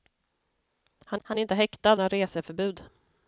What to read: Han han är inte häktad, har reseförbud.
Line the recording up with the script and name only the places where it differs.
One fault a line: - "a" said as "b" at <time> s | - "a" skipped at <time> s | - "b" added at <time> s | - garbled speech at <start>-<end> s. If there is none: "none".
none